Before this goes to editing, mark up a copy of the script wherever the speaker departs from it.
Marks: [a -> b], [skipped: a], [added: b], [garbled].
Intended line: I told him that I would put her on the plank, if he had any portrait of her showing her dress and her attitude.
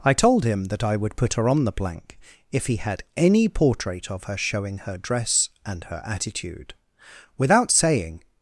I told him that I would put her on the plank, if he had any portrait of her showing her dress and her attitude. [added: Without saying]